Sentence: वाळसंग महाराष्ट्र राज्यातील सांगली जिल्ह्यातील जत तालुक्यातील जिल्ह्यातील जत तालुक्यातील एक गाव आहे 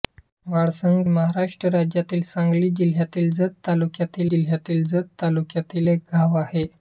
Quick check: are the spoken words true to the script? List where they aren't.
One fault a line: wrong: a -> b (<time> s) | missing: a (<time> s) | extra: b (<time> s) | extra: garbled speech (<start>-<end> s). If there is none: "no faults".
no faults